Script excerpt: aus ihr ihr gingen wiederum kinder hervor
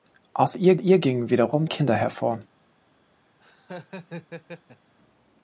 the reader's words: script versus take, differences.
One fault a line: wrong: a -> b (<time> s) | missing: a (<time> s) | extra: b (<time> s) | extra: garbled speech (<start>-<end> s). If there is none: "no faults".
no faults